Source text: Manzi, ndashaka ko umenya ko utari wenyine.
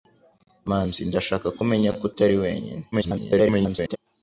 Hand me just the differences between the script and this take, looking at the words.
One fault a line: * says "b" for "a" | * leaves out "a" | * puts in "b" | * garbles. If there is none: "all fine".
* garbles